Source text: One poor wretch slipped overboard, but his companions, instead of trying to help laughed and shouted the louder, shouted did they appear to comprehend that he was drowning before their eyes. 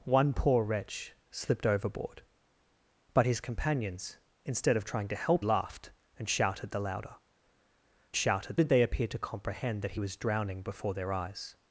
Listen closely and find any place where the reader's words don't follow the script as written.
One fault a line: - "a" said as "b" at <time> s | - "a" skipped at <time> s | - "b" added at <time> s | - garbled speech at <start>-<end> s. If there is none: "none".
none